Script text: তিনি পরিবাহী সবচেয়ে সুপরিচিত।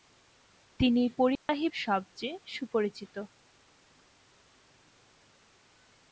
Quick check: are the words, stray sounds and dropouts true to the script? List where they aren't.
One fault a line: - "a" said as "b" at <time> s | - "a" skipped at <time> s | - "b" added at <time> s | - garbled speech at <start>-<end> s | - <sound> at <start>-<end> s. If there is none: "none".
- dropout at 1.4-1.5 s